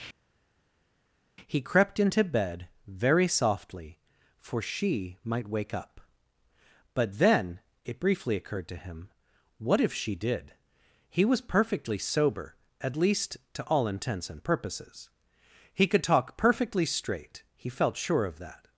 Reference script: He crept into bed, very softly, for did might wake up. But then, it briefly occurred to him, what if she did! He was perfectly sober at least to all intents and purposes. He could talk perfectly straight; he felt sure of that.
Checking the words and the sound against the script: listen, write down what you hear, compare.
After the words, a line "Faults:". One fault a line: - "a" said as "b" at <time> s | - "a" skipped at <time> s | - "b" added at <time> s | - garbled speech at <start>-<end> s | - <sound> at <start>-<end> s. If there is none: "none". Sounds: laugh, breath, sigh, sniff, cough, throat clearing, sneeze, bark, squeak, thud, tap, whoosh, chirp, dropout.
He crept into bed, very softly, for she might wake up. But then, it briefly occurred to him, what if she did! He was perfectly sober at least to all intents and purposes. He could talk perfectly straight; he felt sure of that.
Faults:
- "did" said as "she" at 4.6 s